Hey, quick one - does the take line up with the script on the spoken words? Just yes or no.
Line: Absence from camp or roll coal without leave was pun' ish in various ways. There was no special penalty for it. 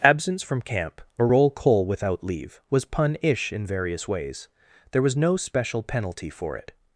yes